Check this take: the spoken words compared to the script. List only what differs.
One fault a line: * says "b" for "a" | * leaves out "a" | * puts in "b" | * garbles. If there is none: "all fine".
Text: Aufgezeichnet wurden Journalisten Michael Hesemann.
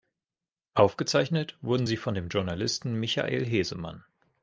* puts in "sie von dem"